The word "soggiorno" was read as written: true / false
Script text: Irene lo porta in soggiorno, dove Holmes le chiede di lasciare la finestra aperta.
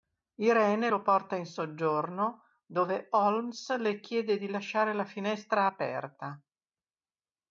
true